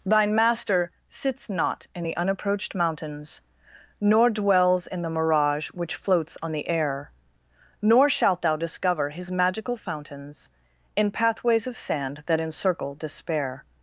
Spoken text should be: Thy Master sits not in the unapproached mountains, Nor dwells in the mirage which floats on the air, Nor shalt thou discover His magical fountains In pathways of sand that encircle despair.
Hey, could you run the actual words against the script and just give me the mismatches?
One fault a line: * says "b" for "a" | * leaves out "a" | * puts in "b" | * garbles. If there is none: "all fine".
* says "Thine" for "Thy"